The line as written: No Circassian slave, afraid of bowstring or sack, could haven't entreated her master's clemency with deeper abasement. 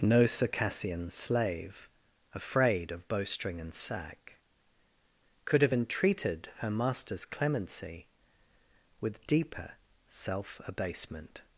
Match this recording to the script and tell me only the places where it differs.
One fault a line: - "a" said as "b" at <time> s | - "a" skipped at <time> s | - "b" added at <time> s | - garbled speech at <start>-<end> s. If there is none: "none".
- "or" said as "and" at 3.6 s
- "haven't" said as "have" at 5.6 s
- "self" added at 10.1 s